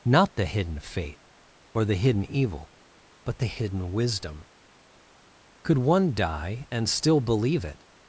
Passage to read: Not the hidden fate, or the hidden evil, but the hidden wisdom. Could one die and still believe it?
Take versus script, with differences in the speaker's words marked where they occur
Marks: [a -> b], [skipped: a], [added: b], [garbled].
Not the hidden fate, or the hidden evil, but the hidden wisdom. Could one die and still believe it?